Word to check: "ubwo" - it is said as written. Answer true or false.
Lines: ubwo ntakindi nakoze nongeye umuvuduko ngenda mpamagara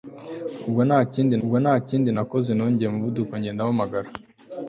true